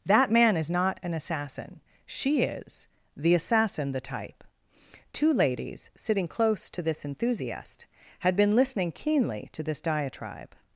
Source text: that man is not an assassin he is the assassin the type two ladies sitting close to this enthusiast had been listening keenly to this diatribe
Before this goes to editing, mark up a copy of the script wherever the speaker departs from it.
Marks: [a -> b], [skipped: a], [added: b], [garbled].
that man is not an assassin [he -> she] is the assassin the type two ladies sitting close to this enthusiast had been listening keenly to this diatribe